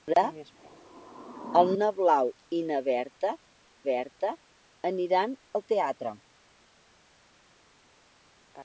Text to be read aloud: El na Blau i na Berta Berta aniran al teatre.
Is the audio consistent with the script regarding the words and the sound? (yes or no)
yes